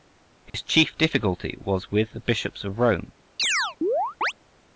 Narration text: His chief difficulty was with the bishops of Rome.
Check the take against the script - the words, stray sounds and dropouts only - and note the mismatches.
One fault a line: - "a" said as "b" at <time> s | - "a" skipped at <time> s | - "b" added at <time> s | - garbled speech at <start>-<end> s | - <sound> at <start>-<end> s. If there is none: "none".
- dropout at 0.5-0.5 s
- chirp at 3.4-4.3 s